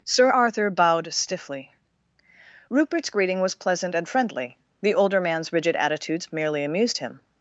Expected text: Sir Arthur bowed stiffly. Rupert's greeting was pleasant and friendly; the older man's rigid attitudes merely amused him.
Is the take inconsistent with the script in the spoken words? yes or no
no